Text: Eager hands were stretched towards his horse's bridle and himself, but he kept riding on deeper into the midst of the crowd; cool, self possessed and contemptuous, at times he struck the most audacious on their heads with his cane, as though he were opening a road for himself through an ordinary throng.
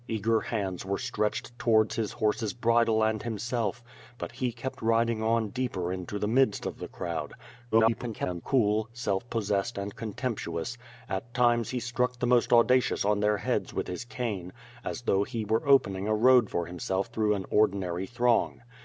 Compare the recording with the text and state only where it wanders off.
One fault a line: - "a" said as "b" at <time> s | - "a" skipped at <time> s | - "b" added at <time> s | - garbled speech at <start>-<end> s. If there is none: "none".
- garbled speech at 7.7-8.4 s